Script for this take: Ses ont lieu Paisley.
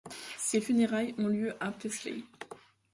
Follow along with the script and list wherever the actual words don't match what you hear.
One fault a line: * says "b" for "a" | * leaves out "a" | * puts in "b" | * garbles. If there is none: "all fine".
* puts in "funérailles"
* puts in "à"